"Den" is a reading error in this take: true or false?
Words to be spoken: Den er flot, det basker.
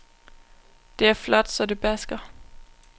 true